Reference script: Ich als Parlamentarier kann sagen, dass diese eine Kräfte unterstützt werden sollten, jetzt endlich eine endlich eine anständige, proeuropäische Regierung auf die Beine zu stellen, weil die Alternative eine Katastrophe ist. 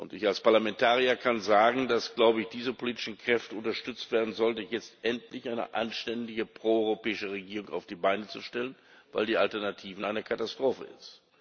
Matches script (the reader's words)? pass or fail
fail